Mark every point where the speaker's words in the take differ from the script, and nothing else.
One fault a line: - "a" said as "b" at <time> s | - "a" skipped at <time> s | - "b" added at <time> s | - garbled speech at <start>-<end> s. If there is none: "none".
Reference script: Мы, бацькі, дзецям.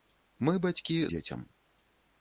none